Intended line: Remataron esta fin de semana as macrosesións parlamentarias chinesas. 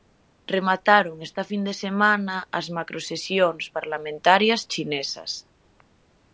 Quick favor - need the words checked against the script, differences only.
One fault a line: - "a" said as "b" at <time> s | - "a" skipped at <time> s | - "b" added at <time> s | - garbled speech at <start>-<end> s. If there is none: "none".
none